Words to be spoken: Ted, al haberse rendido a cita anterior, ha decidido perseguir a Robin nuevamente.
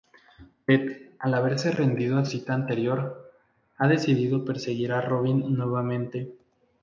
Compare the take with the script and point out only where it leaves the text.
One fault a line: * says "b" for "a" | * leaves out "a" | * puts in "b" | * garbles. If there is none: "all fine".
all fine